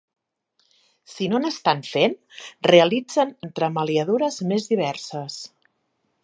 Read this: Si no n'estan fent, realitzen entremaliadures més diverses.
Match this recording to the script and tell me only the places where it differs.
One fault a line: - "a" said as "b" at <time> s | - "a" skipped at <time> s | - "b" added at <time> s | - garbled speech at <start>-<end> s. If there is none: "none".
none